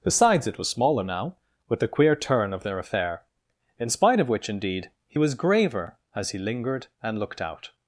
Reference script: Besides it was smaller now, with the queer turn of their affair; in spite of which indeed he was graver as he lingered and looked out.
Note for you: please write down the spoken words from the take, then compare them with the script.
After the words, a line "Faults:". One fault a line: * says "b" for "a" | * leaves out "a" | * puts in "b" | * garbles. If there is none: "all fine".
Besides it was smaller now, with the queer turn of their affair; in spite of which indeed he was graver as he lingered and looked out.
Faults:
all fine